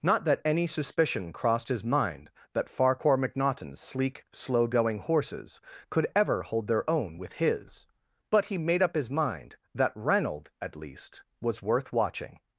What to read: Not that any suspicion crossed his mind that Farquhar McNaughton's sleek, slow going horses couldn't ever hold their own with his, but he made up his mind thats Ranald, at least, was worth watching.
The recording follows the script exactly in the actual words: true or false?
false